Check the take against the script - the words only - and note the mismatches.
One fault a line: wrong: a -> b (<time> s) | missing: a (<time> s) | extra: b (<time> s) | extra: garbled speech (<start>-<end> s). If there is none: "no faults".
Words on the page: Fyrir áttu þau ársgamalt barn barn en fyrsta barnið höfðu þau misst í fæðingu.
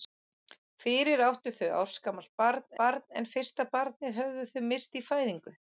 no faults